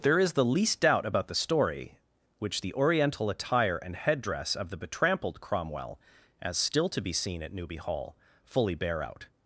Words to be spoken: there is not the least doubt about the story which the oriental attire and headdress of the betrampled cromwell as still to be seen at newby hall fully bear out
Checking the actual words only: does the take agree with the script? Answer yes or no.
no